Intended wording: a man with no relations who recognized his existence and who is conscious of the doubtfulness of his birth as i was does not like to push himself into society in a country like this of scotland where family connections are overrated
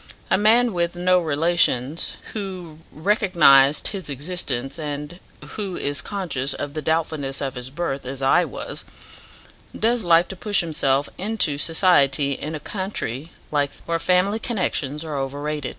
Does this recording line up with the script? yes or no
no